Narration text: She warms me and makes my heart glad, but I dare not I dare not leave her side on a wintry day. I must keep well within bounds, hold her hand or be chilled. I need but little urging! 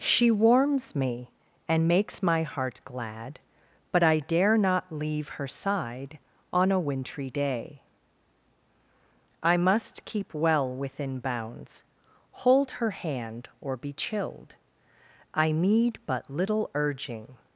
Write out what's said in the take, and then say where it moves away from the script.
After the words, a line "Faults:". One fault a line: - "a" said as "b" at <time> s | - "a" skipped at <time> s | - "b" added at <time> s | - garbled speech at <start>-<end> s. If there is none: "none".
She warms me and makes my heart glad, but I dare not leave her side on a wintry day. I must keep well within bounds, hold her hand or be chilled. I need but little urging!
Faults:
- "I dare not" skipped at 4.9 s